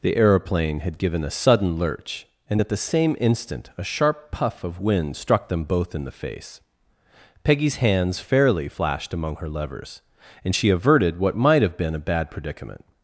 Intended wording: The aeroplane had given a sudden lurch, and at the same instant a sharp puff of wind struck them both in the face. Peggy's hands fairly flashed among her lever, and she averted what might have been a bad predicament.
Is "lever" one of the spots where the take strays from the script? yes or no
yes